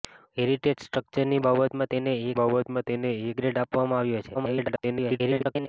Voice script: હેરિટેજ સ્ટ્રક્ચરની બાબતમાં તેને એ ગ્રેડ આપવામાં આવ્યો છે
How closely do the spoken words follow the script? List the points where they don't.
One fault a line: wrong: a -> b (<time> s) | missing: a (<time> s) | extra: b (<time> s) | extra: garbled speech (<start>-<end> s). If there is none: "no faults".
extra: બાબતમાં તેને એ (2.4 s)
extra: garbled speech (4.3-5.7 s)